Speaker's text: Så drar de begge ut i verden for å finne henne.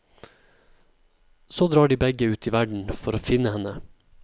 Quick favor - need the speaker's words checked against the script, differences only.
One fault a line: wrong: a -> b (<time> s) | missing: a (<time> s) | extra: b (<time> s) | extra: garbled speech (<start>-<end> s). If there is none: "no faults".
no faults